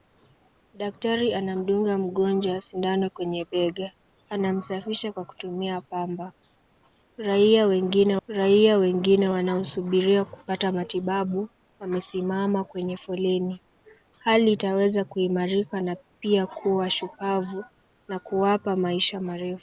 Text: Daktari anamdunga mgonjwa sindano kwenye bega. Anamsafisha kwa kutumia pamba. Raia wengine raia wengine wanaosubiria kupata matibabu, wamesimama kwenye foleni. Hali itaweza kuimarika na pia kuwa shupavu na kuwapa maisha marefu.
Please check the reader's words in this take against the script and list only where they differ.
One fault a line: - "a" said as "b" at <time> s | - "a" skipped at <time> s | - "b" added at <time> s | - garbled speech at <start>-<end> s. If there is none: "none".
none